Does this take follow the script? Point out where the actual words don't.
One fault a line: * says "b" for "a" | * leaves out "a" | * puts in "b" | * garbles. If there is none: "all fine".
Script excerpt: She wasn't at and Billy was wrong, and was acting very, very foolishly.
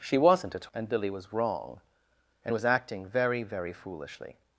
all fine